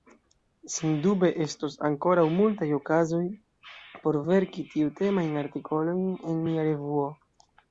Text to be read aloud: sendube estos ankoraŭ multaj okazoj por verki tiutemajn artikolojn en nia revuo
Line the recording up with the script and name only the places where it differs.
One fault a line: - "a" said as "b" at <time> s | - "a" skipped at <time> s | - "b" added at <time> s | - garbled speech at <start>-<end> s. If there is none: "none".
none